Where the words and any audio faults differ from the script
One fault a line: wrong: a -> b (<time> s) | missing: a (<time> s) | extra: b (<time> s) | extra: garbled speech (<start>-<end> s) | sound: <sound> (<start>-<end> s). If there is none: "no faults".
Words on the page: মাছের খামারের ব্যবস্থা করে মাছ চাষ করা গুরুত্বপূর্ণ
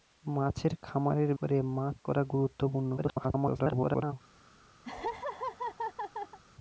missing: ব্যবস্থা (1.3 s)
missing: চাষ (2.0 s)
extra: garbled speech (3.0-4.1 s)
sound: laugh (4.8-6.4 s)